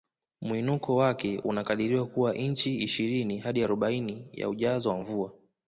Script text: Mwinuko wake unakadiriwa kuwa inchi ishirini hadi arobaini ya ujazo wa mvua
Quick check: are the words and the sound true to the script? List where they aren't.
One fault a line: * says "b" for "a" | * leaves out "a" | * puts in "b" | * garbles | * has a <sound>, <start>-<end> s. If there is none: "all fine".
all fine